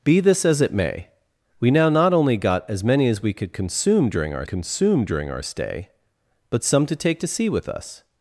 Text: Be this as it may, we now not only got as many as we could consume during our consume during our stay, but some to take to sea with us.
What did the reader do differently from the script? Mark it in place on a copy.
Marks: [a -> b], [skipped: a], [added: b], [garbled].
Be this as it may, we now not only got as many as we could consume during our consume during our stay, but some to take to sea with us.